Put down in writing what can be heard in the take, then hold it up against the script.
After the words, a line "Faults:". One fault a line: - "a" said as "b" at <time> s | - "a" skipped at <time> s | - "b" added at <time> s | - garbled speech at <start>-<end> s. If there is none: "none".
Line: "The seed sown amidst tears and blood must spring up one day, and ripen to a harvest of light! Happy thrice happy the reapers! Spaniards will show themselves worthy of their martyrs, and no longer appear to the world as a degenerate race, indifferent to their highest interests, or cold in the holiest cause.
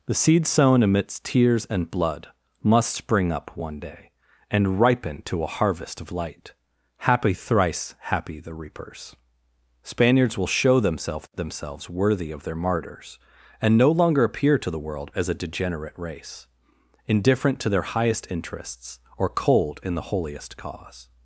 "The seed sown amidst tears and blood must spring up one day, and ripen to a harvest of light! Happy thrice happy the reapers! Spaniards will show themselves themselves worthy of their martyrs, and no longer appear to the world as a degenerate race, indifferent to their highest interests, or cold in the holiest cause.
Faults:
- "themselves" added at 11.3 s